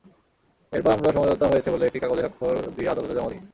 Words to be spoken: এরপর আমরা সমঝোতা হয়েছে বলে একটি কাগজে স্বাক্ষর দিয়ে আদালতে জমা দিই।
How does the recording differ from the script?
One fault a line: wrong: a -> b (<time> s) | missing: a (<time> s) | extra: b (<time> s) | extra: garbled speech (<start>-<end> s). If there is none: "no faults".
no faults